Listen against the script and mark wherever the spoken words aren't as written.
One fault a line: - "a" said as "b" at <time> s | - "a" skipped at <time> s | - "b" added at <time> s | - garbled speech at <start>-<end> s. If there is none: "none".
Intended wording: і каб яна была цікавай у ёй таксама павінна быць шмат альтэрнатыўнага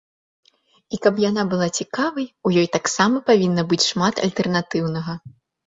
none